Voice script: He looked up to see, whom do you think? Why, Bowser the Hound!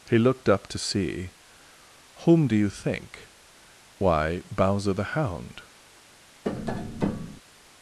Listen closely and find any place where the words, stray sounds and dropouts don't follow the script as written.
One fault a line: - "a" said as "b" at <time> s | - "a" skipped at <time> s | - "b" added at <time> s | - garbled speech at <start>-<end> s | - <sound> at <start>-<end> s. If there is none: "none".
- tap at 6.4-7.4 s